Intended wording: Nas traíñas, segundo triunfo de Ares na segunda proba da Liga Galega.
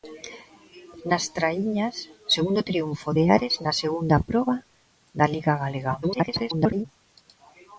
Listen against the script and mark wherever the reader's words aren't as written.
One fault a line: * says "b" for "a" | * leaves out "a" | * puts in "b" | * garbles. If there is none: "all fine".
* garbles